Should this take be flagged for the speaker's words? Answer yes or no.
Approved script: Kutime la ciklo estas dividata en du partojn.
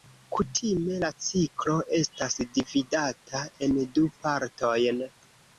no